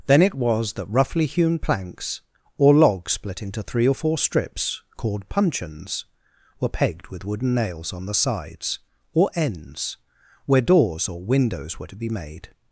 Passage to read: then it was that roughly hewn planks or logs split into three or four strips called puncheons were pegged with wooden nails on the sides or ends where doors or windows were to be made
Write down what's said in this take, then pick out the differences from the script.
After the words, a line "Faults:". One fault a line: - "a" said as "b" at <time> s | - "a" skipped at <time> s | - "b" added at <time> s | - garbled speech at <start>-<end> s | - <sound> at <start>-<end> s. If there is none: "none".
then it was that roughly hewn planks or logs split into three or four strips called puncheons were pegged with wooden nails on the sides or ends where doors or windows were to be made
Faults:
none